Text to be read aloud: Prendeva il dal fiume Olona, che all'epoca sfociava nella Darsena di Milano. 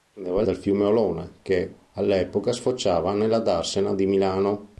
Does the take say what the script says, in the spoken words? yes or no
yes